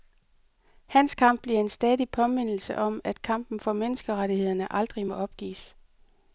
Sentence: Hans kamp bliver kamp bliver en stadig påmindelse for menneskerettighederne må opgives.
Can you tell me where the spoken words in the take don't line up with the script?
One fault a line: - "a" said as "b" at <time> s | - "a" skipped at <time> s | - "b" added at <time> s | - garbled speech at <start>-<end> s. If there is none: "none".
- "kamp bliver" skipped at 1.6 s
- "om at kampen" added at 2.8 s
- "aldrig" added at 4.7 s